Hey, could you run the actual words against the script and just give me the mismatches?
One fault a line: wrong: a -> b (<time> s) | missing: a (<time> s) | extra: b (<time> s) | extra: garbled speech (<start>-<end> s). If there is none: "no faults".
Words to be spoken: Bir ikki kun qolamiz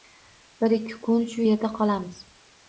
extra: shu yerda (1.4 s)